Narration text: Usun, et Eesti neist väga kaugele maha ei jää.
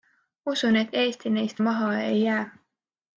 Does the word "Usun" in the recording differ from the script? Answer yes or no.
no